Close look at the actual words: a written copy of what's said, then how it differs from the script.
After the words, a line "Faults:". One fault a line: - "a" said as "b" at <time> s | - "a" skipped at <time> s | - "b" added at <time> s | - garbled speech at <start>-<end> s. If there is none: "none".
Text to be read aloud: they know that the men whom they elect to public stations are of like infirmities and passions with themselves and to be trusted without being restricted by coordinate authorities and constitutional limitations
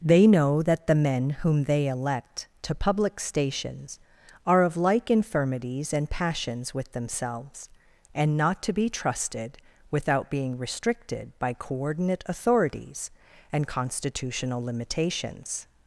they know that the men whom they elect to public stations are of like infirmities and passions with themselves and not to be trusted without being restricted by coordinate authorities and constitutional limitations
Faults:
- "not" added at 8.3 s